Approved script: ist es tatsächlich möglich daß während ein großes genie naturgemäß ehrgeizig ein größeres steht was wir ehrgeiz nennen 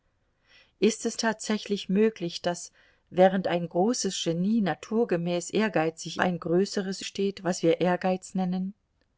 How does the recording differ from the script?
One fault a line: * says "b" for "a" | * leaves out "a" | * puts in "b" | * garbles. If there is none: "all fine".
all fine